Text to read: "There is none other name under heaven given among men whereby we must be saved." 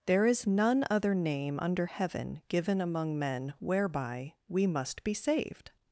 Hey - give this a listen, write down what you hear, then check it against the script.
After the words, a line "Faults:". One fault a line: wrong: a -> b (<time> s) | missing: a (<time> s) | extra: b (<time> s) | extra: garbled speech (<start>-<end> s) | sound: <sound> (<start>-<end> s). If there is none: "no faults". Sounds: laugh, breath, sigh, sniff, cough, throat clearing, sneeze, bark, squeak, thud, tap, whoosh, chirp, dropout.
"There is none other name under heaven given among men whereby we must be saved."
Faults:
no faults